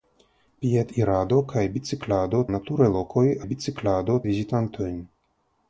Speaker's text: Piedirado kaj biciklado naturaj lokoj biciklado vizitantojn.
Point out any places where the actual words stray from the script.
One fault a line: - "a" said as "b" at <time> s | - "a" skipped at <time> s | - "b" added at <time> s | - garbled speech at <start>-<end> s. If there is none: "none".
none